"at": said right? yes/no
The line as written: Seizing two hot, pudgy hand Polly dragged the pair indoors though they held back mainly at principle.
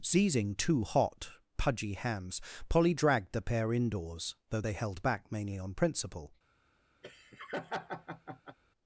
no